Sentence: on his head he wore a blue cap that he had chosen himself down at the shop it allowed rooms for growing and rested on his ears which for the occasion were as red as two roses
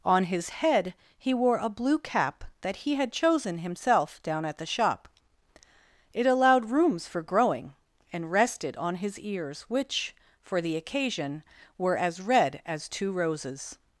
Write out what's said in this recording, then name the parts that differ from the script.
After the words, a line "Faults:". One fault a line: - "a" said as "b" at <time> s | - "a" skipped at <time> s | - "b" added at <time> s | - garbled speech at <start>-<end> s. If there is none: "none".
on his head he wore a blue cap that he had chosen himself down at the shop it allowed rooms for growing and rested on his ears which for the occasion were as red as two roses
Faults:
none